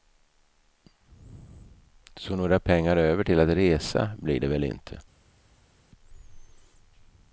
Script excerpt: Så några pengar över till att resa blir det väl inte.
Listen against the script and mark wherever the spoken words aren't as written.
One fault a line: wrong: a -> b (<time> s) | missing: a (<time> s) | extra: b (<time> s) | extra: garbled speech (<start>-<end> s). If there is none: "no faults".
no faults